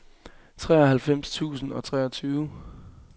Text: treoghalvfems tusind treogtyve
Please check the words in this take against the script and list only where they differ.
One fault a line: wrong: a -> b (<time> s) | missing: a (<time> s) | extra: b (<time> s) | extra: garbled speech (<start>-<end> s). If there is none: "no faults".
extra: og (1.7 s)